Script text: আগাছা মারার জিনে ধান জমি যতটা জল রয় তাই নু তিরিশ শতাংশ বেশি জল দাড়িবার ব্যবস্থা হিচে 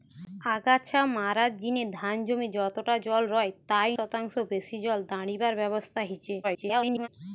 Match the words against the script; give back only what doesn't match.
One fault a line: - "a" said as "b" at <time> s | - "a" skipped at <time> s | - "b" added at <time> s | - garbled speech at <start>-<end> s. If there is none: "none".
- "নু তিরিশ" skipped at 3.9 s
- garbled speech at 6.4-7.1 s